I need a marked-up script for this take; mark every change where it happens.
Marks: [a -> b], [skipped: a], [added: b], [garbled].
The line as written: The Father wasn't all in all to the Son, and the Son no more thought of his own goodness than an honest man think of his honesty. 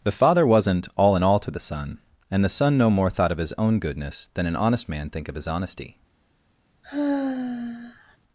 The Father wasn't all in all to the Son, and the Son no more thought of his own goodness than an honest man think of his honesty.